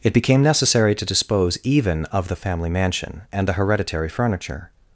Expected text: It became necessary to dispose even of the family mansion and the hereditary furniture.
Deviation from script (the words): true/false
false